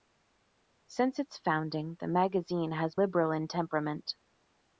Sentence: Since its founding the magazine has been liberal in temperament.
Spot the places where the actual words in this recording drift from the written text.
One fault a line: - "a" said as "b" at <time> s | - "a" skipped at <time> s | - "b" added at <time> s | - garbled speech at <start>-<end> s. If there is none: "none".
- "been" skipped at 3.0 s